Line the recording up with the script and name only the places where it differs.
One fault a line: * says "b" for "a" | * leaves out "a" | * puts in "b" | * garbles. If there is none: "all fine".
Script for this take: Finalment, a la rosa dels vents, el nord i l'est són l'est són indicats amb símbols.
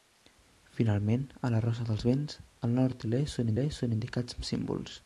all fine